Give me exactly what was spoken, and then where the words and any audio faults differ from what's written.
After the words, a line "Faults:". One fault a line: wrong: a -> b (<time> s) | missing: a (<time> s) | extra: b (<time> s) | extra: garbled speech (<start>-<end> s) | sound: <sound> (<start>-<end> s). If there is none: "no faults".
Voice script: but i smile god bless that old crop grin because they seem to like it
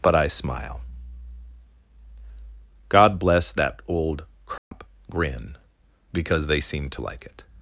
but i smile god bless that old crop grin because they seem to like it
Faults:
sound: dropout (4.6-4.7 s)